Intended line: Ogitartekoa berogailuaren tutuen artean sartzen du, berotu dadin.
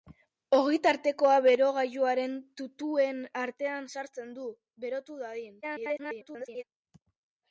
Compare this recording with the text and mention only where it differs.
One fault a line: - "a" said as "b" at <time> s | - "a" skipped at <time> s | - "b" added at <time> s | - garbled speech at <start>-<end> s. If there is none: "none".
- garbled speech at 5.6-6.6 s